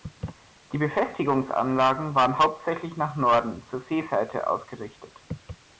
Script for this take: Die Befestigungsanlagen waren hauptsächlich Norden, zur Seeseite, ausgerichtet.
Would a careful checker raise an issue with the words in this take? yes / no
yes